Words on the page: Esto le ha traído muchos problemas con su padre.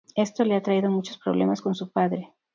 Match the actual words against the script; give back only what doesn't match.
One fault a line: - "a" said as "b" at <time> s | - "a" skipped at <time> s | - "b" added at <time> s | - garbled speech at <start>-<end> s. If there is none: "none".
none